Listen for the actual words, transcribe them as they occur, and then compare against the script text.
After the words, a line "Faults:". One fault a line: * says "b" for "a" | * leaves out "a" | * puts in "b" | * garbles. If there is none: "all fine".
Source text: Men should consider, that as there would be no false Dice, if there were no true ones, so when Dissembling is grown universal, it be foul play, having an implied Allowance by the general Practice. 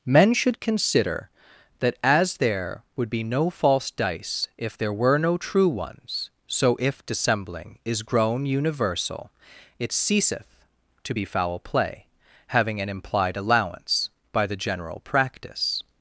Men should consider, that as there would be no false Dice, if there were no true ones, so if Dissembling is grown universal, it ceaseth to be foul play, having an implied Allowance by the general Practice.
Faults:
* says "if" for "when"
* puts in "ceaseth to"